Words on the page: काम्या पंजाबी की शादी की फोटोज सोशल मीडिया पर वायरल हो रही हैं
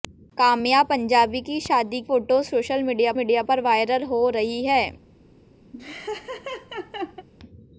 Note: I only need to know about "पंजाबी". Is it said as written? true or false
true